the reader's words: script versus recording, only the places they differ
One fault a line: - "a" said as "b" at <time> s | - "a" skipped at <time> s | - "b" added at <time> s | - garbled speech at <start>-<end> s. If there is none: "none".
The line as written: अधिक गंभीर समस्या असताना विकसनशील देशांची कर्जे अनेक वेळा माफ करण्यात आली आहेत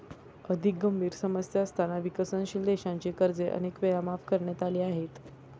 none